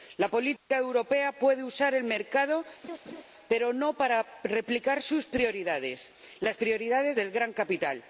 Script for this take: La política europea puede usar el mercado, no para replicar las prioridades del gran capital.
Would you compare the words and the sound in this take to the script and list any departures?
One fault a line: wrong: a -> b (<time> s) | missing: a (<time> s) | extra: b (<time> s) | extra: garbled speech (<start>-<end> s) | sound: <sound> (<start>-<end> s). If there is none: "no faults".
sound: dropout (0.6-0.7 s)
sound: laugh (2.8-3.2 s)
extra: pero (3.5 s)
extra: sus prioridades (5.0 s)